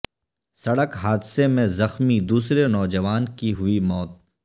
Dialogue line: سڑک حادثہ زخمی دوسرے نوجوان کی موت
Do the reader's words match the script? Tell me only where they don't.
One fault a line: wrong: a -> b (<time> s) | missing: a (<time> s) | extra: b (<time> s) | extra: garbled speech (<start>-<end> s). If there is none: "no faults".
extra: میں (1.5 s)
extra: ہوئی (3.5 s)